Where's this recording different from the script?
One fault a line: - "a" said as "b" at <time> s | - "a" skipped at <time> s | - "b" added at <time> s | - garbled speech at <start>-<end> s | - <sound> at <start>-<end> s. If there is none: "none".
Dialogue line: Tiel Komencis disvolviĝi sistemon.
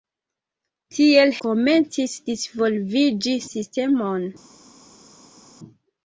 none